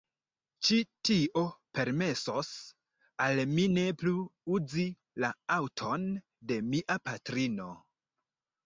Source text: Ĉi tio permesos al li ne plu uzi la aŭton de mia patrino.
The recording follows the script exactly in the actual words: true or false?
false